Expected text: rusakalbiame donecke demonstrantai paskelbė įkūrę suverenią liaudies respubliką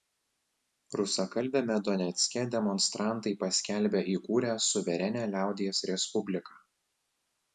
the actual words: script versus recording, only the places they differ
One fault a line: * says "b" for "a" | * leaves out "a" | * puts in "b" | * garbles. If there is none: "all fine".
all fine